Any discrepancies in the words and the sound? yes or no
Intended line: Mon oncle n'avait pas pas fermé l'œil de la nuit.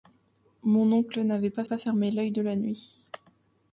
no